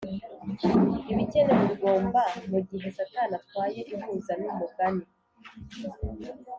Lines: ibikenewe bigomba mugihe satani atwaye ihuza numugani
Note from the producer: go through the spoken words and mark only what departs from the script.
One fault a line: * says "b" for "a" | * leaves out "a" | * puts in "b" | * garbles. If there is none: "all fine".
all fine